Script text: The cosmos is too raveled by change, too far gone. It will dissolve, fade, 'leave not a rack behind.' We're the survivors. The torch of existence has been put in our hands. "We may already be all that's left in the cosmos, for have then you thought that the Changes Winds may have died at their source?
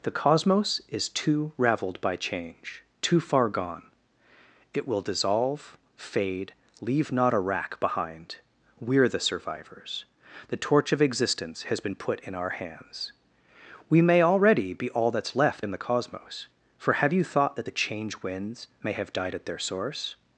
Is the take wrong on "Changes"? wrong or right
wrong